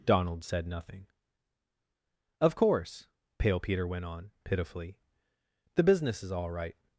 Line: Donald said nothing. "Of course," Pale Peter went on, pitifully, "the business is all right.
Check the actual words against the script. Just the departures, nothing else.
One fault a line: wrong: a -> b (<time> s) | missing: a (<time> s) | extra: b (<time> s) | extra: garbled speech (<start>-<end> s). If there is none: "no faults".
no faults